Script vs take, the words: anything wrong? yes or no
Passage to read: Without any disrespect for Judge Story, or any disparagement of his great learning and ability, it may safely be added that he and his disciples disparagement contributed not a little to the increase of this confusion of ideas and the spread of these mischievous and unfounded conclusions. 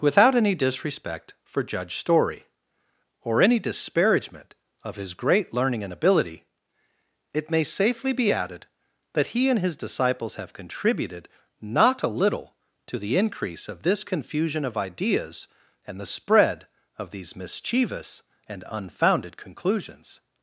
yes